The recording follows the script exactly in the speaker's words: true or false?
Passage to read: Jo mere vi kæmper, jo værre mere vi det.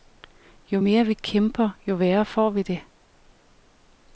false